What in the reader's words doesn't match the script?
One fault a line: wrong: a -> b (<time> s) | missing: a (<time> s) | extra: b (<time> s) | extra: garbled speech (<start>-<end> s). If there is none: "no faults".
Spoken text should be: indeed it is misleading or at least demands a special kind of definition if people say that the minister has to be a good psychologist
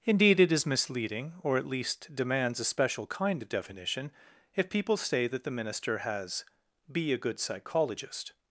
missing: to (6.4 s)